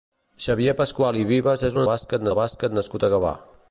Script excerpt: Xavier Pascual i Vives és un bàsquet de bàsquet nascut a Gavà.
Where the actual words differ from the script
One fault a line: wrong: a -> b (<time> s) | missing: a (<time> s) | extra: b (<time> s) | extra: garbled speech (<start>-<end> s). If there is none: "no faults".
no faults